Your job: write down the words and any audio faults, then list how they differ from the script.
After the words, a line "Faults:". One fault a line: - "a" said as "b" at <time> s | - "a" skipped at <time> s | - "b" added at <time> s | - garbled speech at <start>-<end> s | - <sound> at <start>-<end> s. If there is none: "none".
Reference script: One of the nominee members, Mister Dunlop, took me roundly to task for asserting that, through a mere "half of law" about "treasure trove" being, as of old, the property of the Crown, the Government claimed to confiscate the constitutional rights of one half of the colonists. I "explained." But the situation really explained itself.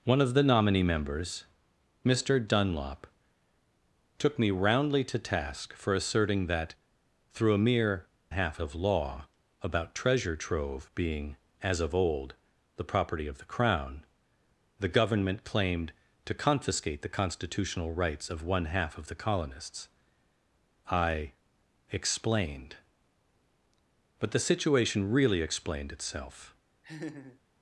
One of the nominee members, Mister Dunlop, took me roundly to task for asserting that, through a mere "half of law" about "treasure trove" being, as of old, the property of the Crown, the Government claimed to confiscate the constitutional rights of one half of the colonists. I "explained." But the situation really explained itself.
Faults:
- laugh at 26.8-27.4 s